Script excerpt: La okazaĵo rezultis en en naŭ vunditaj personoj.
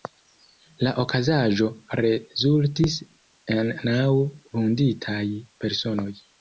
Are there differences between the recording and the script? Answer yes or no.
yes